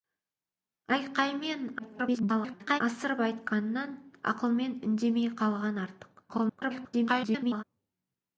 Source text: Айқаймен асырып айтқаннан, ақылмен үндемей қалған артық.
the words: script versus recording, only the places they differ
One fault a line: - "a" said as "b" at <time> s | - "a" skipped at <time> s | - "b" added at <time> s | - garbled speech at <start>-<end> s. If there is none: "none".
- garbled speech at 1.8-2.8 s
- garbled speech at 6.3-7.6 s